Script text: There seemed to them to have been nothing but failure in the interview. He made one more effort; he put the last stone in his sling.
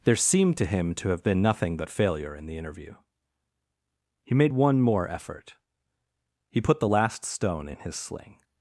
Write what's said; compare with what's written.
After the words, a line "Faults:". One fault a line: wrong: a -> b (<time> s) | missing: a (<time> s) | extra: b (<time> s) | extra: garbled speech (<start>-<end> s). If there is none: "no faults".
There seemed to him to have been nothing but failure in the interview. He made one more effort; he put the last stone in his sling.
Faults:
wrong: them -> him (0.7 s)